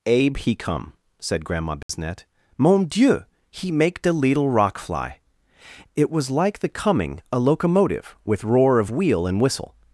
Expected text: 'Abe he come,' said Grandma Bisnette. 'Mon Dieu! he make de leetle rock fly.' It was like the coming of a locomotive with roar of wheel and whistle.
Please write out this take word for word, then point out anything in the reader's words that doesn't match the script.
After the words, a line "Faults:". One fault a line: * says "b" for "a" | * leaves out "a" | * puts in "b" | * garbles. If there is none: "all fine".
'Abe he come,' said Grandma Bisnette. 'Mon Dieu! he make de leetle rock fly.' It was like the coming a locomotive with roar of wheel and whistle.
Faults:
* leaves out "of"